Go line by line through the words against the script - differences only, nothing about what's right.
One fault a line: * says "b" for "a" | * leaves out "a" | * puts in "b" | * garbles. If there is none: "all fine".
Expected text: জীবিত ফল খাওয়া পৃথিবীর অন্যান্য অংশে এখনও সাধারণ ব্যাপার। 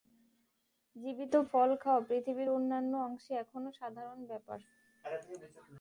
all fine